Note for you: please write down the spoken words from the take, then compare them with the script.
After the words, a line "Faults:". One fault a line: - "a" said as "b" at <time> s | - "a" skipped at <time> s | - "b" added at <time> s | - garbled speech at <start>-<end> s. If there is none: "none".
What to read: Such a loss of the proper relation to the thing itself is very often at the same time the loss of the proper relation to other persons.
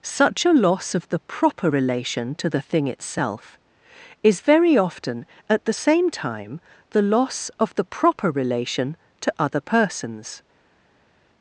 Such a loss of the proper relation to the thing itself is very often at the same time the loss of the proper relation to other persons.
Faults:
none